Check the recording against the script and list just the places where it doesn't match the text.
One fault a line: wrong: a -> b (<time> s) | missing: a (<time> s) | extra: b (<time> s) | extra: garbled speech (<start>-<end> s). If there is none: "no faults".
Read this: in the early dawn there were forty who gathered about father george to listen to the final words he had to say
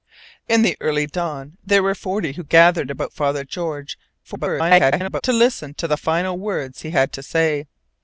extra: garbled speech (4.2-5.2 s)